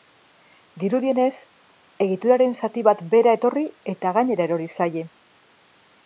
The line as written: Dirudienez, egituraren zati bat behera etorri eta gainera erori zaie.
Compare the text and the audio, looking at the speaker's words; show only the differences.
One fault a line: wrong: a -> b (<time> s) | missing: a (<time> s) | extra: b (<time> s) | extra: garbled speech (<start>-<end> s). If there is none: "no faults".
no faults